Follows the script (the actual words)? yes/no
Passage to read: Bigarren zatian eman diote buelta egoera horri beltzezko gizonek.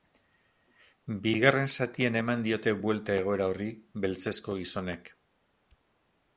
yes